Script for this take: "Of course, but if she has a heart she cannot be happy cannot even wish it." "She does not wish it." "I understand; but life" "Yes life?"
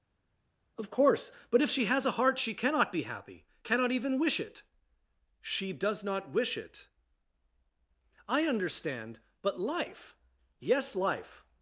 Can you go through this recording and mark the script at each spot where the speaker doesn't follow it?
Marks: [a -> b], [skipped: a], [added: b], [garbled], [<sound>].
"Of course, but if she has a heart she cannot be happy cannot even wish it." "She does not wish it." "I understand; but life" "Yes life?"